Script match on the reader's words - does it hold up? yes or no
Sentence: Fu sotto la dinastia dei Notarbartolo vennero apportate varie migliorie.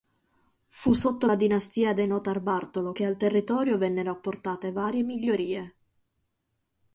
no